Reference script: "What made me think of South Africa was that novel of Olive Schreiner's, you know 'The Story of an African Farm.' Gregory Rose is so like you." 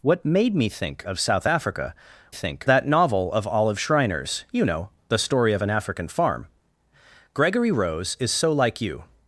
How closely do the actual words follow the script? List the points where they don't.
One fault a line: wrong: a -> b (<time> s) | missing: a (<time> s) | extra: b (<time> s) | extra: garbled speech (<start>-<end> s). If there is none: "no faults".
wrong: was -> think (2.3 s)